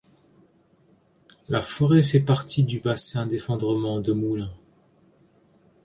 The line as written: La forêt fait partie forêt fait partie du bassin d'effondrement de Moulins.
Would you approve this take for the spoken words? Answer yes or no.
no